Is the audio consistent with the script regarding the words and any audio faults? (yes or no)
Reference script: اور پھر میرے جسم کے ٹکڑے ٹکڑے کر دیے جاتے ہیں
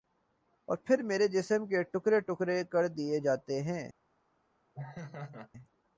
no